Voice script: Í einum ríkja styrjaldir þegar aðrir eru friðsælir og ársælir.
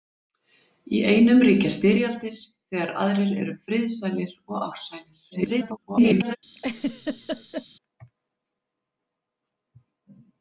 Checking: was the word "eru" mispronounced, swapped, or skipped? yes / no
no